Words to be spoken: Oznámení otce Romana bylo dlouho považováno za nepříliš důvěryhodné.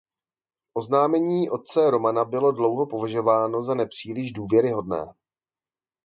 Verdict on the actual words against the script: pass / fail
pass